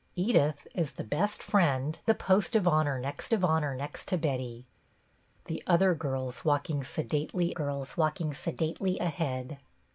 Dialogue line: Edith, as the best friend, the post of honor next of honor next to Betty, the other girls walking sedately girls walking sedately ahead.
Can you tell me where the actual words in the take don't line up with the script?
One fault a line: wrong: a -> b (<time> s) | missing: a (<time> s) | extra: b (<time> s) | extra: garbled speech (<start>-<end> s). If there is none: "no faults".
no faults